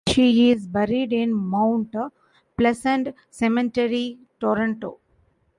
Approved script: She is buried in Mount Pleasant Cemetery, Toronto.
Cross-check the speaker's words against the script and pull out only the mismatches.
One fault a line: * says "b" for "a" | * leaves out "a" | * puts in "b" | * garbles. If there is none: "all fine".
all fine